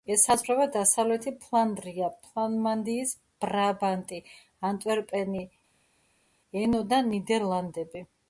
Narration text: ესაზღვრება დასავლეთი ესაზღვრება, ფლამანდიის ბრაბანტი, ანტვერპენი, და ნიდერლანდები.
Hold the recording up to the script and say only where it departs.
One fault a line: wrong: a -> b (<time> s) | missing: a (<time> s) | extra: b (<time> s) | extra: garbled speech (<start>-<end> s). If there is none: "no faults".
wrong: ესაზღვრება -> ფლანდრია (1.4 s)
extra: ენო (6.6 s)